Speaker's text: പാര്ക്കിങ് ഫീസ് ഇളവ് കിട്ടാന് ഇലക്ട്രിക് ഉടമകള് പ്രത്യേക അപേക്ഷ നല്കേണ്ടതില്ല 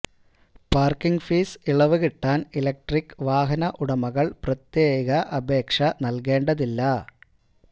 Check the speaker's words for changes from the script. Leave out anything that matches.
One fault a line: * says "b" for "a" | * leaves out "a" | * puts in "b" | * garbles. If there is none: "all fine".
* puts in "വാഹന"